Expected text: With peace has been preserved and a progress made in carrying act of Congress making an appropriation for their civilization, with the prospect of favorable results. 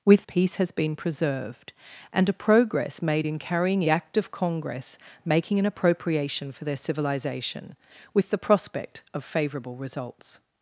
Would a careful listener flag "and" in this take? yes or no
no